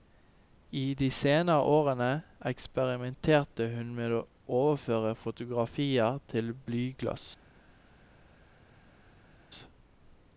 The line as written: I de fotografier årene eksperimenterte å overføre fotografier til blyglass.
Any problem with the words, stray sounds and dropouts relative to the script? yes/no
yes